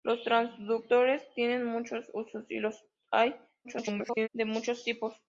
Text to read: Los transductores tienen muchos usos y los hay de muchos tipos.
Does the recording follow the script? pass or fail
fail